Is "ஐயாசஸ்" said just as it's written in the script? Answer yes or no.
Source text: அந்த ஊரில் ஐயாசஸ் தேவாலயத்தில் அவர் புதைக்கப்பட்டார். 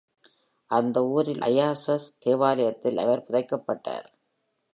yes